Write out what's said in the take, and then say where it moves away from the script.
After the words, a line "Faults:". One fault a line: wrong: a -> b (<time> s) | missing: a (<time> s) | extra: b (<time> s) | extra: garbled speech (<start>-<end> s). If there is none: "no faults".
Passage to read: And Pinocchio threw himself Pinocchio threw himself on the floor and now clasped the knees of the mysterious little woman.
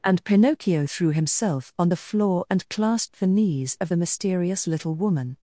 And Pinocchio threw himself on the floor and clasped the knees of the mysterious little woman.
Faults:
missing: Pinocchio threw himself (1.7 s)
missing: now (2.7 s)